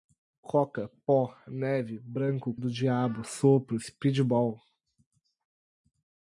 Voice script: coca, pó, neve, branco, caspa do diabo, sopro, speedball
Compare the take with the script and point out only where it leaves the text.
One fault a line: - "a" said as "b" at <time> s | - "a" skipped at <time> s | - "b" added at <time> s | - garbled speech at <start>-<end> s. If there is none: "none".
- "caspa" skipped at 2.5 s